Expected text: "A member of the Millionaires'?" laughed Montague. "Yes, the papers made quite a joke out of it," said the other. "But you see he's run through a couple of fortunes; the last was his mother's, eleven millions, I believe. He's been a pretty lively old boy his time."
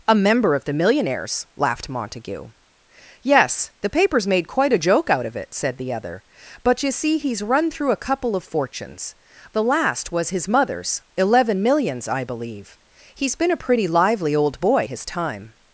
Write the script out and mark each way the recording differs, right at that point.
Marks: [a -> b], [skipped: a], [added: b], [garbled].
"A member of the Millionaires'?" laughed Montague. "Yes, the papers made quite a joke out of it," said the other. "But you see he's run through a couple of fortunes; the last was his mother's, eleven millions, I believe. He's been a pretty lively old boy his time."